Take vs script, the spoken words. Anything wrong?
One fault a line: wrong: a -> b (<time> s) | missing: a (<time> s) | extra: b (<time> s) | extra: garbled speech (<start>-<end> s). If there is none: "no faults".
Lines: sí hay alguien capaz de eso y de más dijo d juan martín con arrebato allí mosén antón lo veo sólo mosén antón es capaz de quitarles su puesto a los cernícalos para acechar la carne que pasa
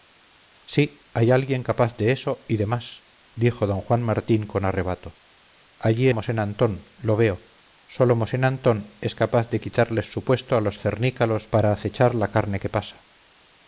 no faults